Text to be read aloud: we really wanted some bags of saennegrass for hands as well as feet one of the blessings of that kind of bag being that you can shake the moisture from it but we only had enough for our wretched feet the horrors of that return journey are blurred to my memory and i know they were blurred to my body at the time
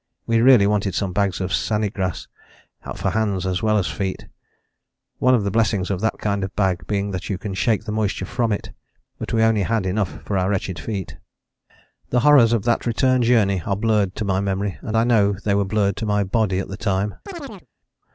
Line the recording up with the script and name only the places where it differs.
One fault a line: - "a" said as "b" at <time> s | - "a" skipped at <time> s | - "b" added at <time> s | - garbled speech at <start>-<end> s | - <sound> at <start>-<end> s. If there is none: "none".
- chirp at 17.3-17.7 s